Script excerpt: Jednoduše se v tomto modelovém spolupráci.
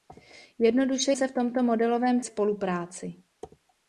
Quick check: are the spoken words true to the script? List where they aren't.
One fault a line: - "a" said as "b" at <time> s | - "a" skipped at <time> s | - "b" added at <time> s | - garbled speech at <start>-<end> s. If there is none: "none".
none